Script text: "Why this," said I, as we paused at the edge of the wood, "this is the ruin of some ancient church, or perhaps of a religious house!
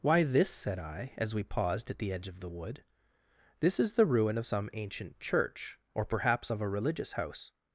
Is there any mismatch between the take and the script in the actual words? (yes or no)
no